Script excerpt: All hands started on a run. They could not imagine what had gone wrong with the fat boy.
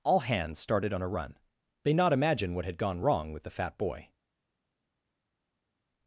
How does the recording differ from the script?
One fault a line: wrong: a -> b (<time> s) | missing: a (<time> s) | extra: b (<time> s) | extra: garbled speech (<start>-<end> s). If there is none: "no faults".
missing: could (1.9 s)